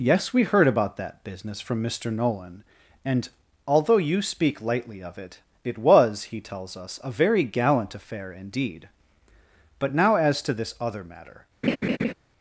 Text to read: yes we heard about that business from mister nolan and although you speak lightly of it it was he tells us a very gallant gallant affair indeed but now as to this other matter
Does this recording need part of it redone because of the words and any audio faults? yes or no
yes